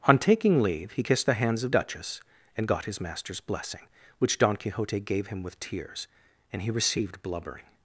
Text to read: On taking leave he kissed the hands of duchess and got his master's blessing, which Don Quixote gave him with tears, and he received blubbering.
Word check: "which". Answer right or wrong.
right